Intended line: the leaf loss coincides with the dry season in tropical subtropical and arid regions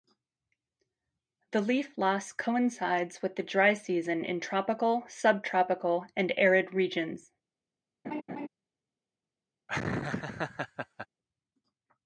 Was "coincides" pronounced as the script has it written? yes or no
yes